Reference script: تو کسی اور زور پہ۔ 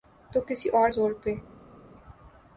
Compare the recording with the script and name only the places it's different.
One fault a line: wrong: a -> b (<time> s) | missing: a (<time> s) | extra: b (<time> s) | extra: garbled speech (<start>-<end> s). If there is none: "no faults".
no faults